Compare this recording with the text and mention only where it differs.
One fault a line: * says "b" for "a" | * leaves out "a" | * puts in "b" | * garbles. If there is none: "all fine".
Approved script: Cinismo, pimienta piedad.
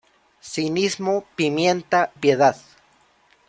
all fine